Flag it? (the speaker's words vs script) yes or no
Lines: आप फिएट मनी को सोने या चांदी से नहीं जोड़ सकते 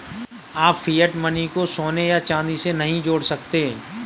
no